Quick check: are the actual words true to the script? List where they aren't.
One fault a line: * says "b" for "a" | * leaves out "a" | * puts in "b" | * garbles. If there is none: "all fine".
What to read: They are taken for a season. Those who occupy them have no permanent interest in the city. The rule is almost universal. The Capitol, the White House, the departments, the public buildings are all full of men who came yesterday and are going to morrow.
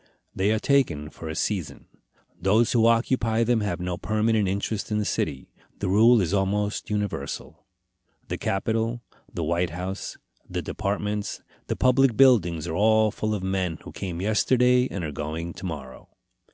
all fine